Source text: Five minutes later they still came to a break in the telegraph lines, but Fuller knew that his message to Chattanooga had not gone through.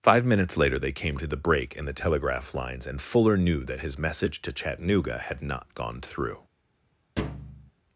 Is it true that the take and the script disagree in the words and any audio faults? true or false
true